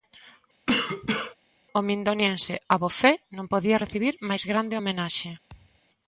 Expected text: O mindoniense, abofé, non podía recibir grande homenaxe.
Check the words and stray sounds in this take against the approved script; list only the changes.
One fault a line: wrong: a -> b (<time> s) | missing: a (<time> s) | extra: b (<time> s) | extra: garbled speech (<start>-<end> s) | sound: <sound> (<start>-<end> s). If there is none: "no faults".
sound: cough (0.7-1.4 s)
extra: máis (4.3 s)
sound: thud (5.5-5.8 s)